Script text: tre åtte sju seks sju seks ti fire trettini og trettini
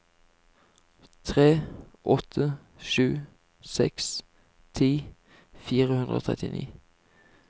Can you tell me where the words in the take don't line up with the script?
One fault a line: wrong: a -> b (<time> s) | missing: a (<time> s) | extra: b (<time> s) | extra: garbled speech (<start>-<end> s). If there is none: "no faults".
missing: sju seks (4.1 s)
wrong: trettini -> hundre (5.9 s)